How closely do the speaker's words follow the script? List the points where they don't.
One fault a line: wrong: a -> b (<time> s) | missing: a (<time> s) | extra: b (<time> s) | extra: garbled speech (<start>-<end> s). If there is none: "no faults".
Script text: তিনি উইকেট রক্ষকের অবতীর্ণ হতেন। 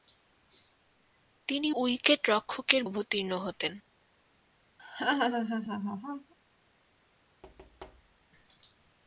no faults